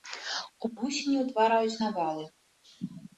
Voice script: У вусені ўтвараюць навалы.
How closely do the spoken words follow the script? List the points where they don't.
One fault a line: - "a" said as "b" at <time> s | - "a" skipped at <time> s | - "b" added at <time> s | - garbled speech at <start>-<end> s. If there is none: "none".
none